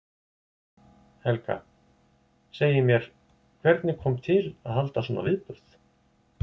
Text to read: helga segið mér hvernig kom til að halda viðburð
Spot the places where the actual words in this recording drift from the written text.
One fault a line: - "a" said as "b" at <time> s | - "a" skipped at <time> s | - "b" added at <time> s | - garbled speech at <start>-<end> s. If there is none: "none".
- "svona" added at 5.1 s